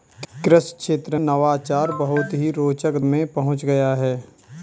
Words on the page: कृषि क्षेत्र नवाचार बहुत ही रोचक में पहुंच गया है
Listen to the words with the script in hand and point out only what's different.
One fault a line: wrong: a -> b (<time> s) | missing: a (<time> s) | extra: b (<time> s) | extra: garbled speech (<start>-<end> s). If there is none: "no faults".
no faults